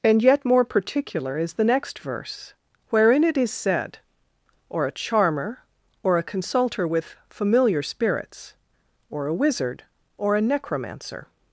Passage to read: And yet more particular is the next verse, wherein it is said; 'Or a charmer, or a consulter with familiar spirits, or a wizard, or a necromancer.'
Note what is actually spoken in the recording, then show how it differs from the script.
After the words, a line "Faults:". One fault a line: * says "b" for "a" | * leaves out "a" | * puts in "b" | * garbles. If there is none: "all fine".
And yet more particular is the next verse, wherein it is said; 'Or a charmer, or a consulter with familiar spirits, or a wizard, or a necromancer.'
Faults:
all fine